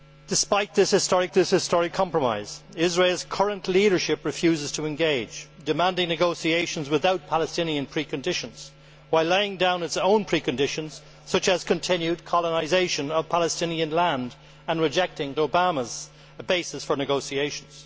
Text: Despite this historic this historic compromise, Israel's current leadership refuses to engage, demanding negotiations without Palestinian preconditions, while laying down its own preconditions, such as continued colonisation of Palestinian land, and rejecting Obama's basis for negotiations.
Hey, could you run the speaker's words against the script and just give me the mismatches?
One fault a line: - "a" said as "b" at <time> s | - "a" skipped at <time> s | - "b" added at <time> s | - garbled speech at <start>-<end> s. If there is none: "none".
none